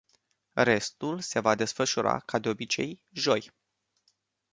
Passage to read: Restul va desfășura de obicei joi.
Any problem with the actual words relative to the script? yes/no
yes